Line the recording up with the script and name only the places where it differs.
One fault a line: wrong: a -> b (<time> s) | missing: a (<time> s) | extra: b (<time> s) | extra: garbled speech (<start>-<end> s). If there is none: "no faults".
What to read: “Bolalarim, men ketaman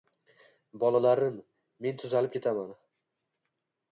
extra: tuzalib (2.0 s)